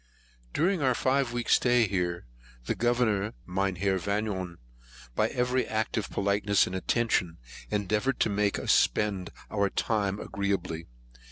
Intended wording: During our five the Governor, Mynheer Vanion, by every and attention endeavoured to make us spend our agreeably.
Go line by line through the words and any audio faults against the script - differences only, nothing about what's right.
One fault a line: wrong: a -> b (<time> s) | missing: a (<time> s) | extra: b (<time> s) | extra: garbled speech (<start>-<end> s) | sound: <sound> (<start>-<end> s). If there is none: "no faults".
extra: weeks stay here (1.3 s)
extra: act of politeness (5.7 s)
extra: time (9.7 s)